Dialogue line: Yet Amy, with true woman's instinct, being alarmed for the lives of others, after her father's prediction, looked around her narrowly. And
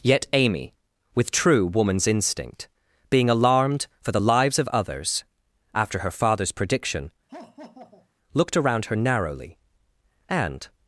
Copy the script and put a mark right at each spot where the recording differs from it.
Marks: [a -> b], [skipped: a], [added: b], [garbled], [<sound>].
Yet Amy, with true woman's instinct, being alarmed for the lives of others, after her father's prediction, [laugh] looked around her narrowly. And